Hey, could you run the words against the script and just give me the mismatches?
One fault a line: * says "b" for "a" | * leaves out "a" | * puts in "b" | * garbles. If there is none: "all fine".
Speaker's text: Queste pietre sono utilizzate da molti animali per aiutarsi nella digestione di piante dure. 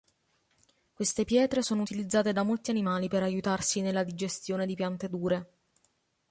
all fine